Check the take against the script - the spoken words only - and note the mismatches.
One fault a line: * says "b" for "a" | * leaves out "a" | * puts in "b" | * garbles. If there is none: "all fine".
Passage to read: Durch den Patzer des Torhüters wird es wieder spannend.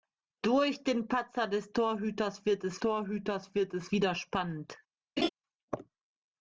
* puts in "Torhüters wird es"